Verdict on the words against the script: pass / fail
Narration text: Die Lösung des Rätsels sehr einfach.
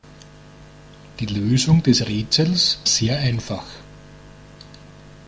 pass